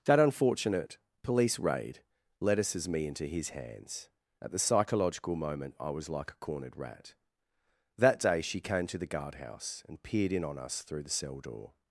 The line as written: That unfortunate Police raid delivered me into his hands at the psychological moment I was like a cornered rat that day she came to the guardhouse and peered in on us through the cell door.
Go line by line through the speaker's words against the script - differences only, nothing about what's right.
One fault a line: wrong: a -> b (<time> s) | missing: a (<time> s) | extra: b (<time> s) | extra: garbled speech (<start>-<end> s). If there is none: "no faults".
wrong: delivered -> lettuces (2.4 s)